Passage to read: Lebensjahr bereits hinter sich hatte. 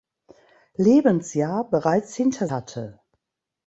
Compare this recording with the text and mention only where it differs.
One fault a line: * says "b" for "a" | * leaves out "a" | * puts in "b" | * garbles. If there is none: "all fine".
* leaves out "sich"